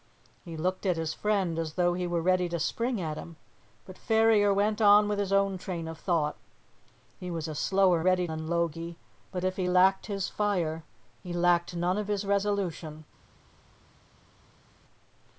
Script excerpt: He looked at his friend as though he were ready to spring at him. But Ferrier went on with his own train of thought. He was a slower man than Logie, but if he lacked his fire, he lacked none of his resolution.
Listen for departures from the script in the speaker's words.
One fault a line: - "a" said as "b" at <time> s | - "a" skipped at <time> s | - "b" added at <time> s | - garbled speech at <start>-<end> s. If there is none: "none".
- "man" said as "ready" at 8.0 s